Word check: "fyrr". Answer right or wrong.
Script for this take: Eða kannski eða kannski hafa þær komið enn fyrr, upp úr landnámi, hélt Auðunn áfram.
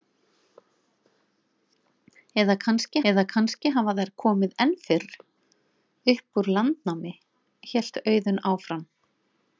right